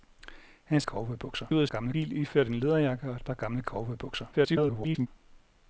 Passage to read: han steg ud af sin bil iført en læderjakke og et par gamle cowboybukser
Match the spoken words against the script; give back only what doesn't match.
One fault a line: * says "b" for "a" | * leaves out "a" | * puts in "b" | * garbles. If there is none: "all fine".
* says "cowboybukser" for "steg"
* says "gamle" for "sin"
* garbles